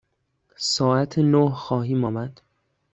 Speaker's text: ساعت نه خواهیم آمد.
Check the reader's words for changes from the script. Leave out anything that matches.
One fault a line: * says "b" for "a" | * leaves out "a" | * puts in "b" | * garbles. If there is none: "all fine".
all fine